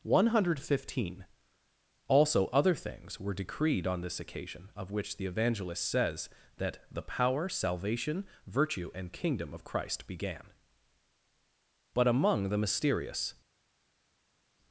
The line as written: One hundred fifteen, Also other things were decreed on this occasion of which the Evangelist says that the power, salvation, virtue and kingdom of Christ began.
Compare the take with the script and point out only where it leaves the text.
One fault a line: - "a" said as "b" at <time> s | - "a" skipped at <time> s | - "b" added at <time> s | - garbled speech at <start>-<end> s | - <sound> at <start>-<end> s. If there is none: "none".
- "But among the mysterious" added at 11.9 s